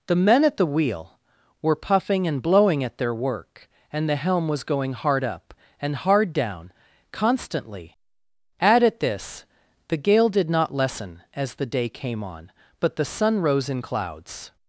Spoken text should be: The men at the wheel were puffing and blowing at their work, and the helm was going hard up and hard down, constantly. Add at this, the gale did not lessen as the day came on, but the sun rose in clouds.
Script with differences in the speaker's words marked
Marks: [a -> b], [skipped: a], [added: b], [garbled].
The men at the wheel were puffing and blowing at their work, and the helm was going hard up and hard down, constantly. Add at this, the gale did not lessen as the day came on, but the sun rose in clouds.